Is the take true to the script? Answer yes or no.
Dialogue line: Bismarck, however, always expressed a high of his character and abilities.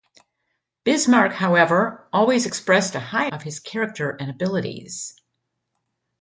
yes